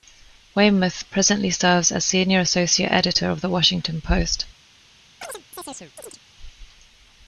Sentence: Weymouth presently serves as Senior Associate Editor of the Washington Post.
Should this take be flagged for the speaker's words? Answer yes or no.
no